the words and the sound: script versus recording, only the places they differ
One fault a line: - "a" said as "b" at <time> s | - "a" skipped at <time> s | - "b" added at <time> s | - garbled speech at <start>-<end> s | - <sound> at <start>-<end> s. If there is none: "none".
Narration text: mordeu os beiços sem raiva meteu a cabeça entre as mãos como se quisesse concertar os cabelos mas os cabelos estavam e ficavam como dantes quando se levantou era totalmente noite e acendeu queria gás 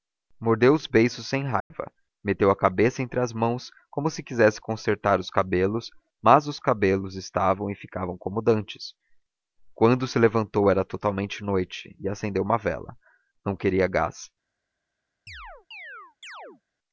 - dropout at 1.6-1.7 s
- "uma vela não" added at 12.4 s
- chirp at 15.3-16.6 s